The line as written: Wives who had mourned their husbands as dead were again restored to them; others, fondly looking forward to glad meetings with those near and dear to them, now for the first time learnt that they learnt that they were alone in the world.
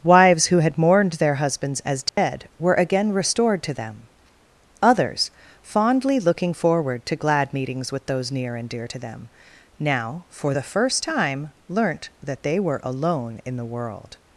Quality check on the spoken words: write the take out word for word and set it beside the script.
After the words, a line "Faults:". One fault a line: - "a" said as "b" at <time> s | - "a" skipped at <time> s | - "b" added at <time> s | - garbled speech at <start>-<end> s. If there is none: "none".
Wives who had mourned their husbands as dead were again restored to them; others, fondly looking forward to glad meetings with those near and dear to them, now for the first time learnt that they were alone in the world.
Faults:
- "learnt that they" skipped at 12.6 s